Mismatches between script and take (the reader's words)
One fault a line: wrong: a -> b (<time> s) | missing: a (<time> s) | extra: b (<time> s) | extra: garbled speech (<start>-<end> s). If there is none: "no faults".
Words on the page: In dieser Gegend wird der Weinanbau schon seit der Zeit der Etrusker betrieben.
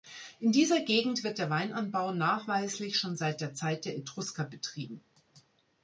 extra: nachweislich (2.1 s)